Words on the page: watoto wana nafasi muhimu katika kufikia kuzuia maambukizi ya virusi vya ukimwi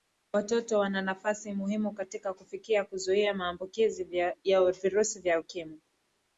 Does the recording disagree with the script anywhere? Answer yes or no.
no